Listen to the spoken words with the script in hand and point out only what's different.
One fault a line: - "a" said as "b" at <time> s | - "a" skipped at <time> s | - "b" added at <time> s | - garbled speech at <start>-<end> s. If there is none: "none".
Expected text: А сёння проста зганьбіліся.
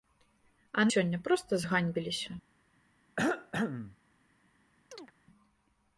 none